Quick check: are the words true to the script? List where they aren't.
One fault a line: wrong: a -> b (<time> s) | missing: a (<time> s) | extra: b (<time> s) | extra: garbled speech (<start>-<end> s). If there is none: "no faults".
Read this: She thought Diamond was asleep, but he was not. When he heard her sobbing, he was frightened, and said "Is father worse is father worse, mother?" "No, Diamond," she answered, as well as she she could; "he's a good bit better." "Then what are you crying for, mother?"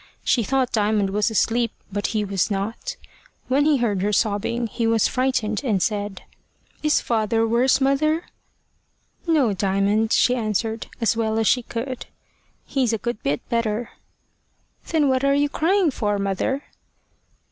missing: is father worse (7.8 s)
missing: she (11.6 s)